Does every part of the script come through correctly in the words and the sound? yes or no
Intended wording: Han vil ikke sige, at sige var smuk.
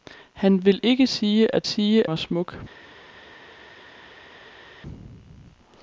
yes